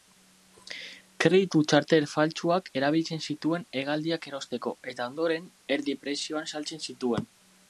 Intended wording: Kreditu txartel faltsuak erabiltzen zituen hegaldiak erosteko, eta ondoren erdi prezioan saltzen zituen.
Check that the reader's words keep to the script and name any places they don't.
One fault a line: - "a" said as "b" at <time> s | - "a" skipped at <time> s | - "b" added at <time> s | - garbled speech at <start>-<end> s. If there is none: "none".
none